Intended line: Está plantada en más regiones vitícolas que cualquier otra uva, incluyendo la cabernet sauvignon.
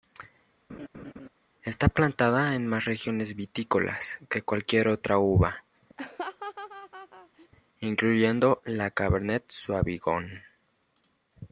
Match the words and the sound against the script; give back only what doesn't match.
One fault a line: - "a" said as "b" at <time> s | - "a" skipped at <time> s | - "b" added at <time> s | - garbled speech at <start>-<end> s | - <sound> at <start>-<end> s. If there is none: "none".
- laugh at 0.7-1.3 s
- laugh at 6.0-7.5 s